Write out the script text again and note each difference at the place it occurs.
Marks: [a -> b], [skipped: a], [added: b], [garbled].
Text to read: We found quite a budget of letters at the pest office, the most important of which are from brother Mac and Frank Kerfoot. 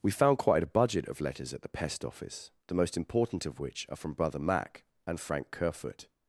We found quite a budget of letters at the pest office, the most important of which are from brother Mac and Frank Kerfoot.